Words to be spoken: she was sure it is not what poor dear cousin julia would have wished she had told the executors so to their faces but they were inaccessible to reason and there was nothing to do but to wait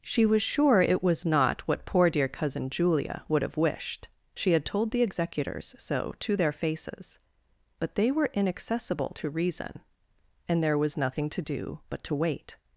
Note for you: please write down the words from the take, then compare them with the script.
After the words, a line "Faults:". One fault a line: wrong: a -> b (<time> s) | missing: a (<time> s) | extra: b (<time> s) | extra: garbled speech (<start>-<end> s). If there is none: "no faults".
she was sure it was not what poor dear cousin julia would have wished she had told the executors so to their faces but they were inaccessible to reason and there was nothing to do but to wait
Faults:
wrong: is -> was (1.0 s)